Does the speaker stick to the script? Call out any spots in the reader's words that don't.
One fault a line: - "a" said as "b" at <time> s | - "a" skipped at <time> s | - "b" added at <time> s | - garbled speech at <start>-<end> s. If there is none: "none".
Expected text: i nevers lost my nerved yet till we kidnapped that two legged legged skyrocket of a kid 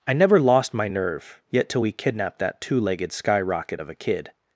- "nevers" said as "never" at 0.1 s
- "nerved" said as "nerve" at 0.9 s
- "legged" skipped at 3.1 s